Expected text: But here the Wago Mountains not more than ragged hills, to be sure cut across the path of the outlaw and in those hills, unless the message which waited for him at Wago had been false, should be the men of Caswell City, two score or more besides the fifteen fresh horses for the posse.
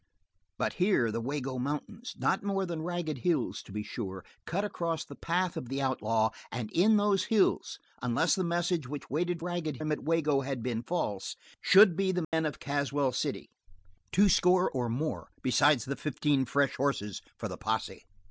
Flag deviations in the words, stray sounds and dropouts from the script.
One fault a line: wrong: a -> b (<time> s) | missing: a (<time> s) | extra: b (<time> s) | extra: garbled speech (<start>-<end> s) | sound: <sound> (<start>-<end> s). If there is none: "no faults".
wrong: for -> ragged (9.4 s)
sound: dropout (12.2-12.3 s)